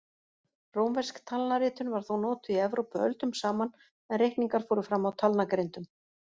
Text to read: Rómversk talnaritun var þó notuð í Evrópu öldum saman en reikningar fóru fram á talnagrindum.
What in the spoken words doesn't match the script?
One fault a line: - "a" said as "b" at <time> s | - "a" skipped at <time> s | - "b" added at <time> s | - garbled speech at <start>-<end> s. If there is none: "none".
none